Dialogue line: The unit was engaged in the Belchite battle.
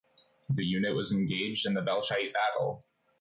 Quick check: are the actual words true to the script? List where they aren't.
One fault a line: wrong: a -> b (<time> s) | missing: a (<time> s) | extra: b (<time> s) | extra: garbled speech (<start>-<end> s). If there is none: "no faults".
no faults